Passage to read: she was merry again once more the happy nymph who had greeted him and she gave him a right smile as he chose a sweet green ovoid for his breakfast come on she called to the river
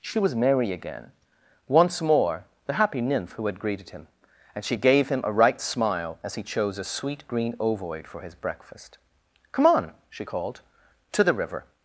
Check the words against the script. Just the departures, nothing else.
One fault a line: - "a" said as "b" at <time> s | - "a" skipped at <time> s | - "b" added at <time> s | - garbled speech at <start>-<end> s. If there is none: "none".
none